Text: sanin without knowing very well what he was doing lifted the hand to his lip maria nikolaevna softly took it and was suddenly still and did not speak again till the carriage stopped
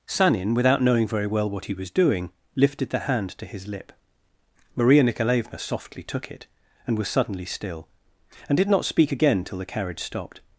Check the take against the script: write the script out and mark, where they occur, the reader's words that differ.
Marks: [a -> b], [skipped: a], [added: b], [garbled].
sanin without knowing very well what he was doing lifted the hand to his lip maria nikolaevna softly took it and was suddenly still and did not speak again till the carriage stopped